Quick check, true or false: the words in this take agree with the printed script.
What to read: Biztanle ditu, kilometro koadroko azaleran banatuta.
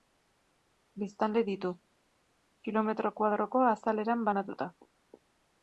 true